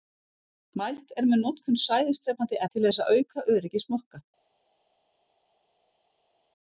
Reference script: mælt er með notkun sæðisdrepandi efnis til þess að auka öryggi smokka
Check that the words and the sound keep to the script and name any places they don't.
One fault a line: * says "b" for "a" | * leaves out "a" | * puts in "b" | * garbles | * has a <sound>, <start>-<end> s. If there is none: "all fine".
* leaves out "efnis"